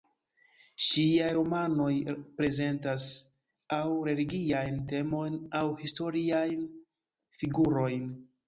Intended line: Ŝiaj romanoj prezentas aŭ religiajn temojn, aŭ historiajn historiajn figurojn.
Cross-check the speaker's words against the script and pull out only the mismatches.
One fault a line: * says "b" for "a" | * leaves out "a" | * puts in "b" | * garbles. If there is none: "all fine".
* leaves out "historiajn"